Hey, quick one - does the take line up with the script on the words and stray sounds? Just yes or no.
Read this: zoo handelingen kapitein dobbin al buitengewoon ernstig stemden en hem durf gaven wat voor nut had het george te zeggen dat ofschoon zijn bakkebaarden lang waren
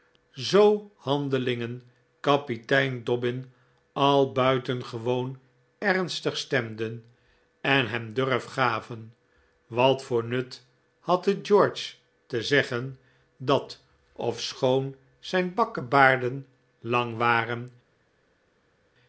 yes